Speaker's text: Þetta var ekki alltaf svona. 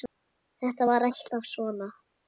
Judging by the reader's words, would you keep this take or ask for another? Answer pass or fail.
fail